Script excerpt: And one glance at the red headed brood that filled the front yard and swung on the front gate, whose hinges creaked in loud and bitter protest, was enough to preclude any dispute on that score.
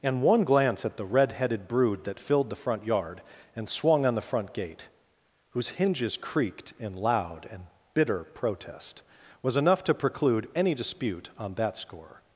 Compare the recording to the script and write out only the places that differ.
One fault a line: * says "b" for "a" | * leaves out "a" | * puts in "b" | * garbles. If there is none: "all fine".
all fine